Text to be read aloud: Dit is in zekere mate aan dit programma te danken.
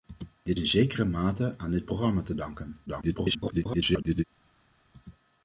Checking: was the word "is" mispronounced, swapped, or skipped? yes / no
yes